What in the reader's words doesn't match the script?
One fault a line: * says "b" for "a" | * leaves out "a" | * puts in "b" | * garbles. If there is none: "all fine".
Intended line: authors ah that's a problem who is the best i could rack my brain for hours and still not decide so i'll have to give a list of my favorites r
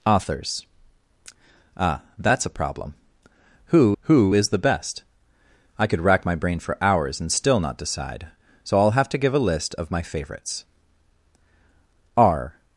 * puts in "who"